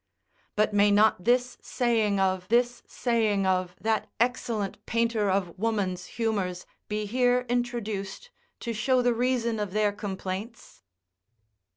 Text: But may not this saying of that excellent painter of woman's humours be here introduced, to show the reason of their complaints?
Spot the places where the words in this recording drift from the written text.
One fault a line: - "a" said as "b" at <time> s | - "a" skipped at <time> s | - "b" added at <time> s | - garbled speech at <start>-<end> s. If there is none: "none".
- "this saying of" added at 2.5 s